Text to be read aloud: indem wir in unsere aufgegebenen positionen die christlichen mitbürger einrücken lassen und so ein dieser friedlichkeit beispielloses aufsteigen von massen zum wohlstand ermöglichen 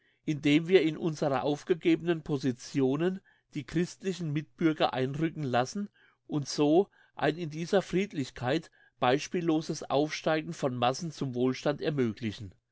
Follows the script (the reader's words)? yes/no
no